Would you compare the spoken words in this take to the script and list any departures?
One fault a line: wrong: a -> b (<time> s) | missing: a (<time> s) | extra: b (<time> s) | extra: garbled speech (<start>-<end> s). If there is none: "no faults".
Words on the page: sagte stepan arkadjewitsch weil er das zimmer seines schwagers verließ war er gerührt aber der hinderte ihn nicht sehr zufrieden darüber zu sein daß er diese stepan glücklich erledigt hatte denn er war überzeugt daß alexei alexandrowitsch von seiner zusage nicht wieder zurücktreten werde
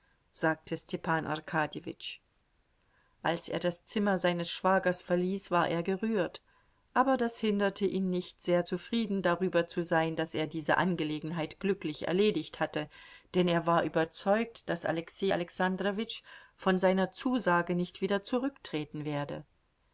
wrong: weil -> als (3.2 s)
wrong: der -> das (7.2 s)
wrong: stepan -> angelegenheit (10.8 s)